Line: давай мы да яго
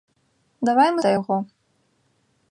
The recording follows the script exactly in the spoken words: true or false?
true